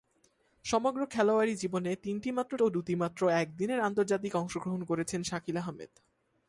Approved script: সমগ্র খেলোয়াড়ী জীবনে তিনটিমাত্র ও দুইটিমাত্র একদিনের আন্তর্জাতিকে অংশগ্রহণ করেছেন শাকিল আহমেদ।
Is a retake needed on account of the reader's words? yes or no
no